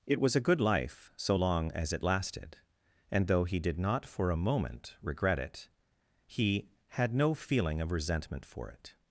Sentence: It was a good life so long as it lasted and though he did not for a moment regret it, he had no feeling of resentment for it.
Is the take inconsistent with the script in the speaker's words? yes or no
no